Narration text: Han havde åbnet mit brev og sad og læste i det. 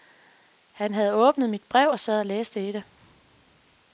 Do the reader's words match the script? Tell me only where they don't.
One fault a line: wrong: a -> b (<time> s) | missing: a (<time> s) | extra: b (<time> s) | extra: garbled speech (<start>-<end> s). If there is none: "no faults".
no faults